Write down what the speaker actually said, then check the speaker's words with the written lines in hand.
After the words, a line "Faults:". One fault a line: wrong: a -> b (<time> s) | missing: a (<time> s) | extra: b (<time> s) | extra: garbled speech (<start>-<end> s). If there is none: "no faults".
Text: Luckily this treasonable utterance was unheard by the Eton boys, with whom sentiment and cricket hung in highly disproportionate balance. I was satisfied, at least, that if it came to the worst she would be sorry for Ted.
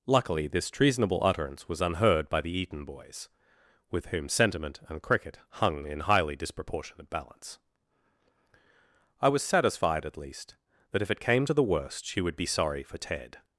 Luckily this treasonable utterance was unheard by the Eton boys, with whom sentiment and cricket hung in highly disproportionate balance. I was satisfied, at least, that if it came to the worst she would be sorry for Ted.
Faults:
no faults